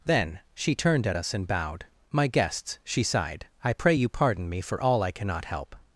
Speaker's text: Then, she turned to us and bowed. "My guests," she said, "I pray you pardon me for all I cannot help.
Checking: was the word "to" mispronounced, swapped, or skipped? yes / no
yes